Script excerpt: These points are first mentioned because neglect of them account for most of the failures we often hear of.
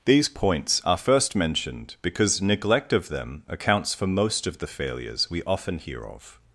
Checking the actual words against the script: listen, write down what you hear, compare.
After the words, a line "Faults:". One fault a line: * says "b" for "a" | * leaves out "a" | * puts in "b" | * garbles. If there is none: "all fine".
These points are first mentioned because neglect of them accounts for most of the failures we often hear of.
Faults:
* says "accounts" for "account"